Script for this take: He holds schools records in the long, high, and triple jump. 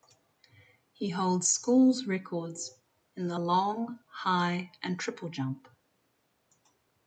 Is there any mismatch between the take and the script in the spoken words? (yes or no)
no